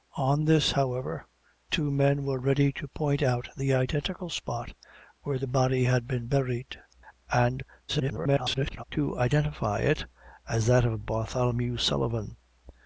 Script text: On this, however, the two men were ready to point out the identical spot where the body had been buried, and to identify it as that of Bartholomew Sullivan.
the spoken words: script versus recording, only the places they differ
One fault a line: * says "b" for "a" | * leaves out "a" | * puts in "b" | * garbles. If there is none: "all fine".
* leaves out "the"
* garbles